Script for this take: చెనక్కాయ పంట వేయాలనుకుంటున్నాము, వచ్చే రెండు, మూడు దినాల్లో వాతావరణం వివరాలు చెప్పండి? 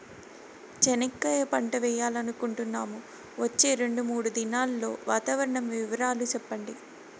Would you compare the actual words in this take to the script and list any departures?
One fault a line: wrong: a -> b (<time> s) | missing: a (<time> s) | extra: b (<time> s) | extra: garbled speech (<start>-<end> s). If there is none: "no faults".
no faults